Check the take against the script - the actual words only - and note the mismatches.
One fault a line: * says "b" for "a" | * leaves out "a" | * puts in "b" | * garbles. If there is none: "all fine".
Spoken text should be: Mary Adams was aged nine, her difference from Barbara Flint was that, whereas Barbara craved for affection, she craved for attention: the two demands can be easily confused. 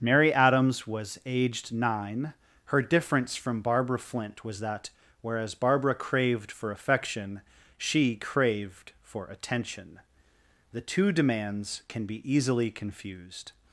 all fine